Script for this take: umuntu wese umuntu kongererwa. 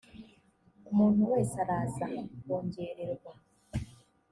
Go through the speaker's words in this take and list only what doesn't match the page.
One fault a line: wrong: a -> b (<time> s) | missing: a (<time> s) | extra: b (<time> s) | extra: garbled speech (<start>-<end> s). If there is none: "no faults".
wrong: umuntu -> araza (1.6 s)